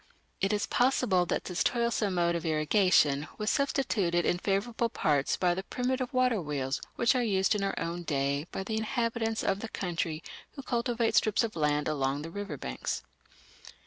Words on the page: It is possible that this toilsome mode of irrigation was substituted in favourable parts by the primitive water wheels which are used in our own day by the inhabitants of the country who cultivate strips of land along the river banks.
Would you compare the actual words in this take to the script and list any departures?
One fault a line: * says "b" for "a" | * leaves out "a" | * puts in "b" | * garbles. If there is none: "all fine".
all fine